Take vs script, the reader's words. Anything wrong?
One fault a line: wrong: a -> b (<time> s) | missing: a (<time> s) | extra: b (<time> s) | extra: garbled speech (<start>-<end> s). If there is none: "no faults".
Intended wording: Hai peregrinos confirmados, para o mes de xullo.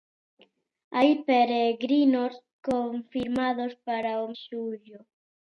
missing: mes de (4.3 s)